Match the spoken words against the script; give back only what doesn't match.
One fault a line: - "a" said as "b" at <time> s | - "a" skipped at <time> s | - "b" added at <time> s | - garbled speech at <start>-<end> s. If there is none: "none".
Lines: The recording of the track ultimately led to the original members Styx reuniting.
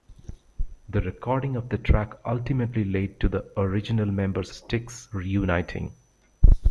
none